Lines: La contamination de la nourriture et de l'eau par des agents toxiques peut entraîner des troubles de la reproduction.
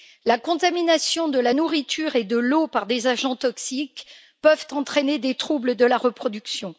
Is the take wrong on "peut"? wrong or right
right